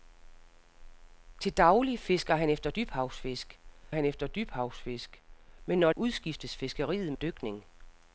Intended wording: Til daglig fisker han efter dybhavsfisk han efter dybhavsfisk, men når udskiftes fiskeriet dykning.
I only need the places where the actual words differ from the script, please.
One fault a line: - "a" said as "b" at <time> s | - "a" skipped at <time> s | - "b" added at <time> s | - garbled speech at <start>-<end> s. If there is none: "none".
none